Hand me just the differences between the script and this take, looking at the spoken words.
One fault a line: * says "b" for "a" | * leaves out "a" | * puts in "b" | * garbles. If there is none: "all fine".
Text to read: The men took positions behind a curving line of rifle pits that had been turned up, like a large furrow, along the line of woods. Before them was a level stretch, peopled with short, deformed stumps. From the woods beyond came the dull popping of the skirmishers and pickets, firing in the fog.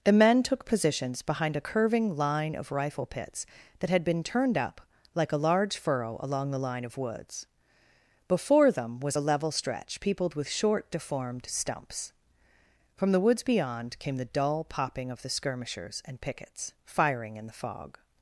all fine